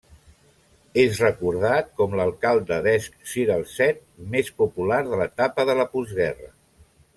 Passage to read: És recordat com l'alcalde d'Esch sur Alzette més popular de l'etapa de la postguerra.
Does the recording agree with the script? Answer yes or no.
yes